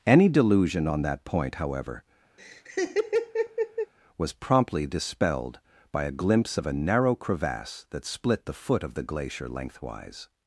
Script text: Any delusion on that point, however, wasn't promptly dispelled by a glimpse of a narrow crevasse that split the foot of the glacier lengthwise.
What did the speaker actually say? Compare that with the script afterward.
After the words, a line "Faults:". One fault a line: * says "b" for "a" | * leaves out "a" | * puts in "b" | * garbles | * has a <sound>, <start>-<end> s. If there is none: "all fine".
Any delusion on that point, however, was promptly dispelled by a glimpse of a narrow crevasse that split the foot of the glacier lengthwise.
Faults:
* has a laugh, 2.4-3.9 s
* says "was" for "wasn't"